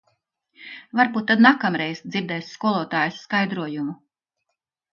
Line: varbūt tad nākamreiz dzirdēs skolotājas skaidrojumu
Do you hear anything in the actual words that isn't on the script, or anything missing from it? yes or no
no